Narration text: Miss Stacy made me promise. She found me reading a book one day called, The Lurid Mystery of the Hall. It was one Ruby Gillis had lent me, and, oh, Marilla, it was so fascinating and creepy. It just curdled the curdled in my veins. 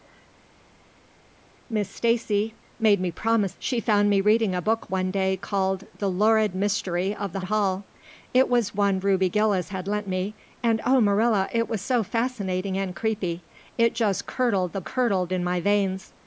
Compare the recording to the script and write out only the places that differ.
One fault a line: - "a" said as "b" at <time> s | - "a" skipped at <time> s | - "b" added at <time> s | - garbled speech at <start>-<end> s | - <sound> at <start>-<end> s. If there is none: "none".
none